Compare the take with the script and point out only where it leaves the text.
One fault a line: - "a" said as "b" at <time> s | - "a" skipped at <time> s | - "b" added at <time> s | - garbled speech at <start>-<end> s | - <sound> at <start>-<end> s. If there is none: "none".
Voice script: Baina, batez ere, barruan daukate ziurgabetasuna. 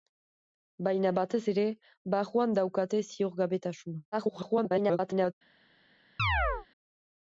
- garbled speech at 4.1-5.3 s
- chirp at 6.2-6.7 s